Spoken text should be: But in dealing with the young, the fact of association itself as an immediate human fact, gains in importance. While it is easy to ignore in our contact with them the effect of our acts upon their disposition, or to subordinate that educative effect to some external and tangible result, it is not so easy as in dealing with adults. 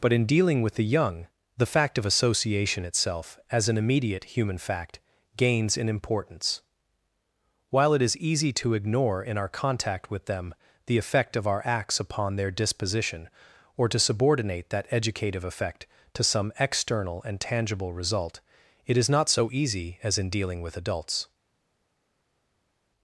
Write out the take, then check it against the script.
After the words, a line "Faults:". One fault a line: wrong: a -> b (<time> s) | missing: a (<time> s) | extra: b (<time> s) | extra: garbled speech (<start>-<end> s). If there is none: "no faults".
But in dealing with the young, the fact of association itself as an immediate human fact, gains in importance. While it is easy to ignore in our contact with them the effect of our acts upon their disposition, or to subordinate that educative effect to some external and tangible result, it is not so easy as in dealing with adults.
Faults:
no faults